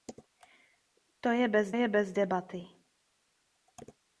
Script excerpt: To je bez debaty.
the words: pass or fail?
fail